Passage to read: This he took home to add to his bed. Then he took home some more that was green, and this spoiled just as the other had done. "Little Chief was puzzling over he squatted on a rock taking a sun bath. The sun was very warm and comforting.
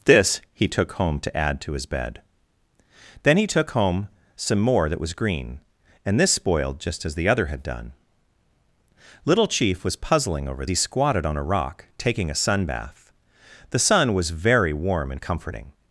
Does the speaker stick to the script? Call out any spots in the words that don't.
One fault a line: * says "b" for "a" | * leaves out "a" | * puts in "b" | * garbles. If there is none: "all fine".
all fine